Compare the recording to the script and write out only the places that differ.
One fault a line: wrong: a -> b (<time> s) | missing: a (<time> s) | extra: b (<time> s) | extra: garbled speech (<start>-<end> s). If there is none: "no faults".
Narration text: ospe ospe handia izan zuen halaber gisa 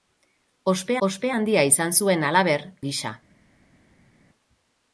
no faults